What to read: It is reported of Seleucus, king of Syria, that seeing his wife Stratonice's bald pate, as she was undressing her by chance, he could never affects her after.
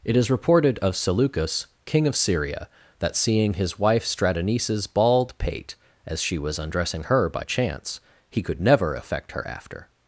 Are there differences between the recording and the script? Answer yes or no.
yes